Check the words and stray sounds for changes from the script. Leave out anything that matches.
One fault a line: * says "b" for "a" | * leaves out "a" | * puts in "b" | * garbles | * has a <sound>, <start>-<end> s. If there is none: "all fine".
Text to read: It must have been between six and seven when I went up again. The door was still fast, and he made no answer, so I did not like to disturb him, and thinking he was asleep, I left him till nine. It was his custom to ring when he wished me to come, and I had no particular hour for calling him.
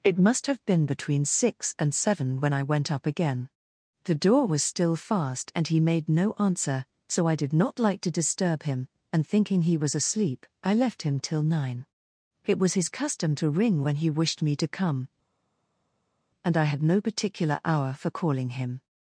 all fine